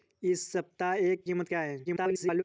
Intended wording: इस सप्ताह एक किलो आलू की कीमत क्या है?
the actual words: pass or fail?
fail